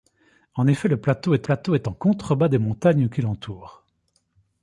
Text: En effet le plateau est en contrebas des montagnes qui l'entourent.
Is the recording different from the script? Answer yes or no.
yes